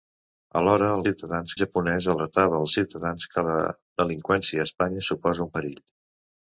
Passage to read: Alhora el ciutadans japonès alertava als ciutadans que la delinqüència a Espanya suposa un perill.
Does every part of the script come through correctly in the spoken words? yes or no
yes